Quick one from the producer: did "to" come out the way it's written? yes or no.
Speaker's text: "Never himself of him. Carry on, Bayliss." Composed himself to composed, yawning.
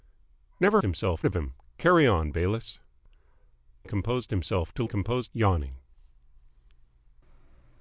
yes